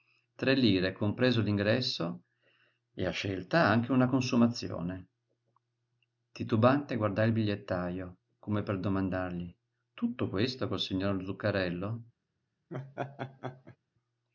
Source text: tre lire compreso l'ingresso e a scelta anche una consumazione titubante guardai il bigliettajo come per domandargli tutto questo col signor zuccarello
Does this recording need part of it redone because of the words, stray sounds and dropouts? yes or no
yes